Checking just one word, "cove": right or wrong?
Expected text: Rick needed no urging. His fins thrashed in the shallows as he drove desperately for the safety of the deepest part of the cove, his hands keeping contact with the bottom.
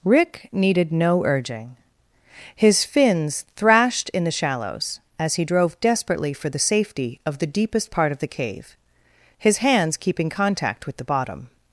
wrong